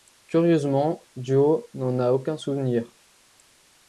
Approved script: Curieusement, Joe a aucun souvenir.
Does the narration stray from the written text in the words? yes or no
yes